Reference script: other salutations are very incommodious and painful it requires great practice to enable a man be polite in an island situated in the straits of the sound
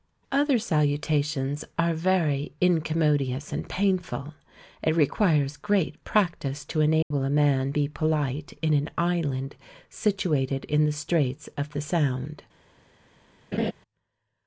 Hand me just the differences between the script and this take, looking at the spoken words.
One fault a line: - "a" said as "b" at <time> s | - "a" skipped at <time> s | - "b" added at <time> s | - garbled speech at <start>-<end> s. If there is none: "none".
none